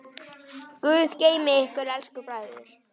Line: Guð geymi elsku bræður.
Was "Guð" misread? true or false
false